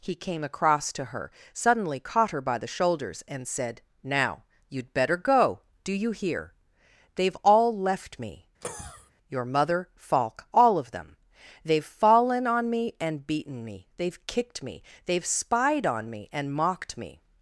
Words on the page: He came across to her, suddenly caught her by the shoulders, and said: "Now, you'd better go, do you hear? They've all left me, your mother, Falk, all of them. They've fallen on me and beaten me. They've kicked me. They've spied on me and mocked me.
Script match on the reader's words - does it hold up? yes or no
yes